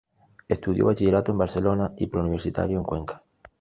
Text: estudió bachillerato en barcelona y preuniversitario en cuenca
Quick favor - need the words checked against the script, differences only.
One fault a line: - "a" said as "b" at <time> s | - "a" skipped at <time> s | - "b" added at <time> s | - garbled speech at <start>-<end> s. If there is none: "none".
none